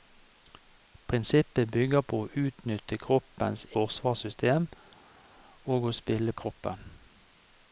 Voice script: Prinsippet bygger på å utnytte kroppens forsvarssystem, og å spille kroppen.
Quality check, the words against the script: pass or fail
pass